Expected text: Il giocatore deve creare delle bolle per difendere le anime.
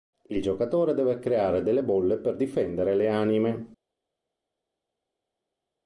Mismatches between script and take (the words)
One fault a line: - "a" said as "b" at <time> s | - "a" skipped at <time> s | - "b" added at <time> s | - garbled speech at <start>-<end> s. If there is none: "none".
none